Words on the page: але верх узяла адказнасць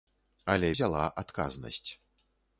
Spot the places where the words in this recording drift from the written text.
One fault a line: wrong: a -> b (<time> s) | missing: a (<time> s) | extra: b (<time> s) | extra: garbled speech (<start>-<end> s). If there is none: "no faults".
missing: верх (0.7 s)